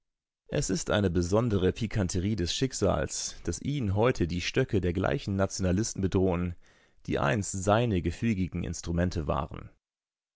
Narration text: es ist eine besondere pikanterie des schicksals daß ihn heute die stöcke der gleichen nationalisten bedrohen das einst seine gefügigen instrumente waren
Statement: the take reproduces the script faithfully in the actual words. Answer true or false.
false